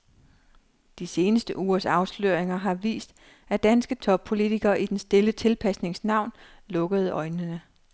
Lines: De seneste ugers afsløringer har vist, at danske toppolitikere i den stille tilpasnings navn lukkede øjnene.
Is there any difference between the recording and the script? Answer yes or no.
no